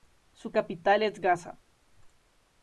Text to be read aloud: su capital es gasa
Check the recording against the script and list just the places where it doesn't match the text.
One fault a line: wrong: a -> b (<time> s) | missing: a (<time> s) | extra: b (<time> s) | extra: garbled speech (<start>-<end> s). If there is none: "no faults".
no faults